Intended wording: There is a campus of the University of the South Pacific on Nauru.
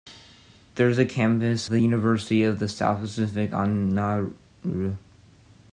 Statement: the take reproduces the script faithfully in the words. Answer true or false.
false